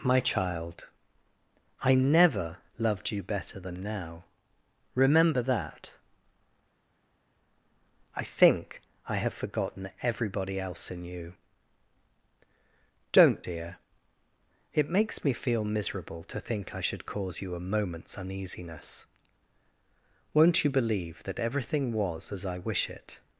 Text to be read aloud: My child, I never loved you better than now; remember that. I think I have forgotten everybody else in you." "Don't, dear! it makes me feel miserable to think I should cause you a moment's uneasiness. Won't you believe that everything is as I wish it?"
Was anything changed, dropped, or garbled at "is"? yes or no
yes